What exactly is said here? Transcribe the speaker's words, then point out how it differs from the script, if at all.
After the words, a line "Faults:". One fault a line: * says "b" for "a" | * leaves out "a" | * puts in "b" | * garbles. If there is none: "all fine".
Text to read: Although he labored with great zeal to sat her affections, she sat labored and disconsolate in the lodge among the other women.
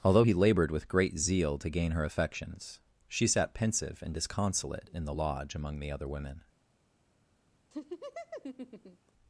Although he labored with great zeal to gain her affections, she sat pensive and disconsolate in the lodge among the other women.
Faults:
* says "gain" for "sat"
* says "pensive" for "labored"